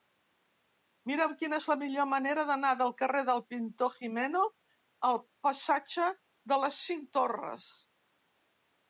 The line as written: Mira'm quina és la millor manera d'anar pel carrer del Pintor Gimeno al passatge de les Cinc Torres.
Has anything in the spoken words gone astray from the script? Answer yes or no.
yes